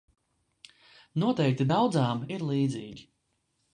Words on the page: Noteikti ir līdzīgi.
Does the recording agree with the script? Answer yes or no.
no